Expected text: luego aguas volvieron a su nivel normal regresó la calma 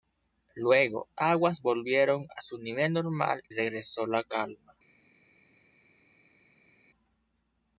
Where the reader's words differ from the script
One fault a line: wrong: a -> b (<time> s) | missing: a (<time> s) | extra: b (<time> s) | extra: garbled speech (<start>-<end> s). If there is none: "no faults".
no faults